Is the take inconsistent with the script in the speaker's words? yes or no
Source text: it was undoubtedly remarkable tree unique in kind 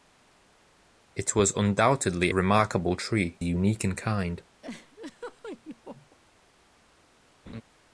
no